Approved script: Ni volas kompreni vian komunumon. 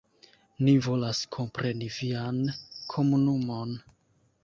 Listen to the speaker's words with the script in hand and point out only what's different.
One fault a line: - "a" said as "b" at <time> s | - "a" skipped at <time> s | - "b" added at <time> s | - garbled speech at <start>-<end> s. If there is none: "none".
none